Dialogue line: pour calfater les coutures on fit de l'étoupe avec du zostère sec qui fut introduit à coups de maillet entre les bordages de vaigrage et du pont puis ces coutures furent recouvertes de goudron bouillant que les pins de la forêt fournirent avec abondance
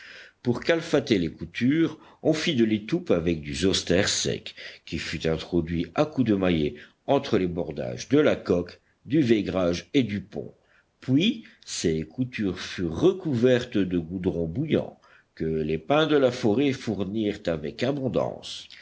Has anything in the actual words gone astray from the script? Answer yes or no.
yes